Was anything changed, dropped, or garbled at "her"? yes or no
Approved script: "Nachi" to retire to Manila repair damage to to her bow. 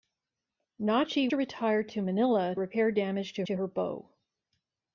no